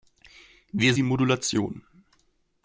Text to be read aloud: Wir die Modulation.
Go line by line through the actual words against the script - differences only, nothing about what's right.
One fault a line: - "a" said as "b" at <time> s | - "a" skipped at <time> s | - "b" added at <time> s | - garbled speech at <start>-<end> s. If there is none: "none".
none